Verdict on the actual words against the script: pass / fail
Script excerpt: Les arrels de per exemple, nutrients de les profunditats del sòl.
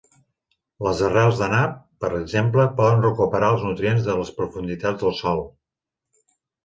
fail